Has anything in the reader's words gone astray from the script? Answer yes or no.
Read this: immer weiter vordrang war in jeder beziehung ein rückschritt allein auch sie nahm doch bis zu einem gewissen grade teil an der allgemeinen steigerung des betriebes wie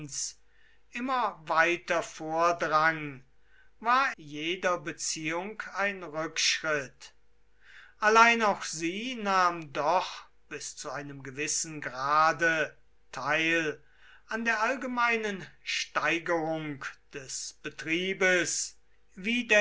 yes